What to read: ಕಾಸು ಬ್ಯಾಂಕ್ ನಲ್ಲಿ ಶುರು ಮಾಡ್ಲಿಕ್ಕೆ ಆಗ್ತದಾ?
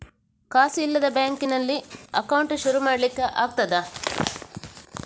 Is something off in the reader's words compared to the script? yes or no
yes